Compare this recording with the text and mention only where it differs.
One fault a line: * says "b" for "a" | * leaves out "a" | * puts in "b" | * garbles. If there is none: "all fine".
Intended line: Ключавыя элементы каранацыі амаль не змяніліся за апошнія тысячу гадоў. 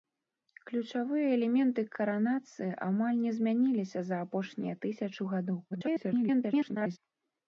* garbles